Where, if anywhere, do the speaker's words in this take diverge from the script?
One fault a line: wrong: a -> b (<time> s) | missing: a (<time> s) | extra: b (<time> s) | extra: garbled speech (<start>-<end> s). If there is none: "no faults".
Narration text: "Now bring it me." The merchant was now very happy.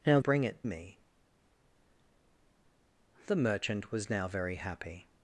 no faults